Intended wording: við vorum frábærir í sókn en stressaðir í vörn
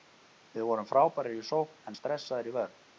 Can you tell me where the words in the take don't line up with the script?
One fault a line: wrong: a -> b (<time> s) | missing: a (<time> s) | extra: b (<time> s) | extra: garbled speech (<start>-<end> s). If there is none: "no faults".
no faults